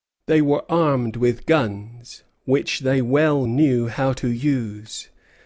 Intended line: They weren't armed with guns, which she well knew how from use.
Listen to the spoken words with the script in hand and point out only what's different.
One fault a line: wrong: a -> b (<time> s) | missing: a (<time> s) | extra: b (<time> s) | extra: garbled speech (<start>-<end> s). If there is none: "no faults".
wrong: weren't -> were (0.4 s)
wrong: she -> they (2.8 s)
wrong: from -> to (4.1 s)